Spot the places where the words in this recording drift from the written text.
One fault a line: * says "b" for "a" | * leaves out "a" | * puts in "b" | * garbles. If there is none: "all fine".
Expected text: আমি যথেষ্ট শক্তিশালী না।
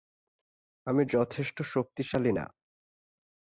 all fine